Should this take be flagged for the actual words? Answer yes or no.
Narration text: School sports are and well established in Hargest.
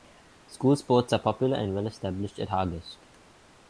yes